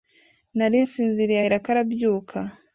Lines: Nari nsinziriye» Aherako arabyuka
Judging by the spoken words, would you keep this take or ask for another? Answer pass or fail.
pass